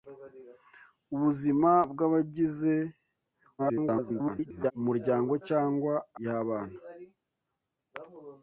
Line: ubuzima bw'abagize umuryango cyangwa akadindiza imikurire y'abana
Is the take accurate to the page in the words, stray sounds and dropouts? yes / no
no